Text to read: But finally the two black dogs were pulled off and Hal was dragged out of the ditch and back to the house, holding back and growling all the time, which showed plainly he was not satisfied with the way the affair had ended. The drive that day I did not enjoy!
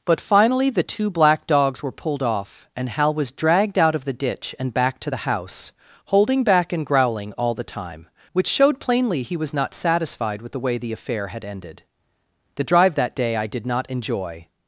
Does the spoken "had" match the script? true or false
true